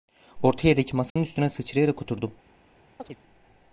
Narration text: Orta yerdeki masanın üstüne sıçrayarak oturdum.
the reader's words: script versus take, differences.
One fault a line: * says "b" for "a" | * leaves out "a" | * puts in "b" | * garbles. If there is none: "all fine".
all fine